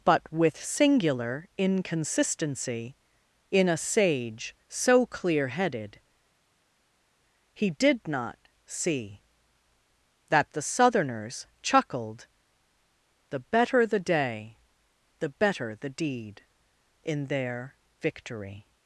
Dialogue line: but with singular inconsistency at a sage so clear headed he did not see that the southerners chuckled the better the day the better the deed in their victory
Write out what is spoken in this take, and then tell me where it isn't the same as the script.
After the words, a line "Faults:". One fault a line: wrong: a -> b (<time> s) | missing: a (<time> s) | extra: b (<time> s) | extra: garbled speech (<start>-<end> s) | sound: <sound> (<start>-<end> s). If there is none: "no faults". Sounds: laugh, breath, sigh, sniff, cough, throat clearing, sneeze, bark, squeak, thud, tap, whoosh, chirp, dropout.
but with singular inconsistency in a sage so clear headed he did not see that the southerners chuckled the better the day the better the deed in their victory
Faults:
wrong: at -> in (3.5 s)